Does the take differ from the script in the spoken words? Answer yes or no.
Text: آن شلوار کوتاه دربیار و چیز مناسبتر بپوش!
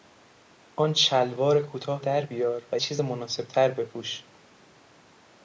no